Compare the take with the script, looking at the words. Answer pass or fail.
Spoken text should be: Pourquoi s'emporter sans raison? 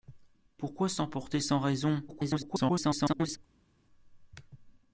fail